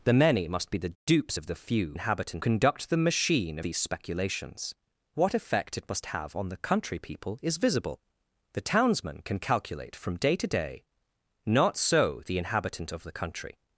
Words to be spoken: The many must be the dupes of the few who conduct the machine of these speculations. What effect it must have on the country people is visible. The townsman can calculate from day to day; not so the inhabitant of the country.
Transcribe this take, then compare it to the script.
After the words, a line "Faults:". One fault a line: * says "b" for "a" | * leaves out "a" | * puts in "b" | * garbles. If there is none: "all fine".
The many must be the dupes of the few inhabitant conduct the machine these speculations. What effect it must have on the country people is visible. The townsman can calculate from day to day; not so the inhabitant of the country.
Faults:
* says "inhabitant" for "who"
* leaves out "of"